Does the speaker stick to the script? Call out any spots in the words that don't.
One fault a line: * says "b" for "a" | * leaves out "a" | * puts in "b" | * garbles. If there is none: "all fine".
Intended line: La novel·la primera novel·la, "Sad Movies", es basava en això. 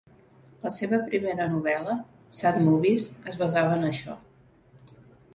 * says "seva" for "novel·la"